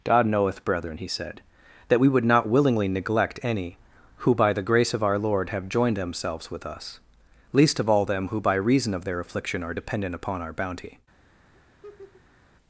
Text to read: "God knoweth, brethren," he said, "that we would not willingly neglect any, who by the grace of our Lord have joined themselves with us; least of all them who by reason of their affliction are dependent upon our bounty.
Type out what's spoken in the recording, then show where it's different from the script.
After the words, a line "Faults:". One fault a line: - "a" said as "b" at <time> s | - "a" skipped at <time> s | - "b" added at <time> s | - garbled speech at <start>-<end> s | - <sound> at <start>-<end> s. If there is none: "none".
"God knoweth, brethren," he said, "that we would not willingly neglect any, who by the grace of our Lord have joined themselves with us; least of all them who by reason of their affliction are dependent upon our bounty.
Faults:
- laugh at 11.5-12.4 s